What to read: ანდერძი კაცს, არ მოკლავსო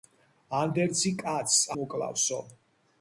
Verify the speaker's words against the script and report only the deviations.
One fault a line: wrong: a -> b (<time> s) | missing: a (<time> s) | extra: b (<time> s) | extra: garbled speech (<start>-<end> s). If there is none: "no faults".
missing: არ (1.6 s)